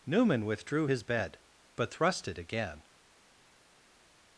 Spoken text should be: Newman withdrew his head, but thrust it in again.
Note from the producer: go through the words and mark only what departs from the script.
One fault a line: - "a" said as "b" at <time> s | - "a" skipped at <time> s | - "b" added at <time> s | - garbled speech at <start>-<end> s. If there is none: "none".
- "head" said as "bed" at 1.0 s
- "in" skipped at 2.4 s